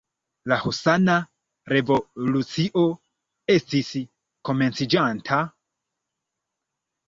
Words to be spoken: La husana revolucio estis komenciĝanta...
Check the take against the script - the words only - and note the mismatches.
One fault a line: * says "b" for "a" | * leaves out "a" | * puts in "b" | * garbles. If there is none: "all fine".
all fine